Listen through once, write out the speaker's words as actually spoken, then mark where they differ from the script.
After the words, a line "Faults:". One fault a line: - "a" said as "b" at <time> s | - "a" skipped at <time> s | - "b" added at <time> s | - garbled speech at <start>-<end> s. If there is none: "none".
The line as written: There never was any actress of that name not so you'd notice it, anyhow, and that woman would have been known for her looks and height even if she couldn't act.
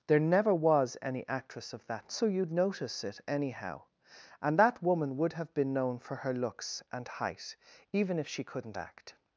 There never was any actress of that so you'd notice it, anyhow, and that woman would have been known for her looks and height even if she couldn't act.
Faults:
- "name not" skipped at 2.1 s